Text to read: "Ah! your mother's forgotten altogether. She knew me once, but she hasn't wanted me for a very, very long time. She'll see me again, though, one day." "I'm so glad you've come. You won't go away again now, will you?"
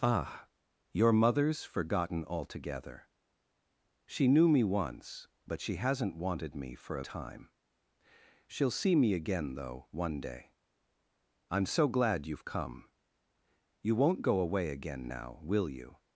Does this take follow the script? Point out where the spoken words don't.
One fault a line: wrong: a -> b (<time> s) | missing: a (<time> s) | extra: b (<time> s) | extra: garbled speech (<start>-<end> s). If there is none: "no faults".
missing: very very long (7.0 s)